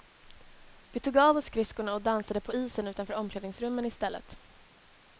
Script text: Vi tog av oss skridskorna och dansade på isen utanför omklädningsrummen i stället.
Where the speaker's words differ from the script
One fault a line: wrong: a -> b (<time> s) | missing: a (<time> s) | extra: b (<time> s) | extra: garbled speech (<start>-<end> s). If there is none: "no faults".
no faults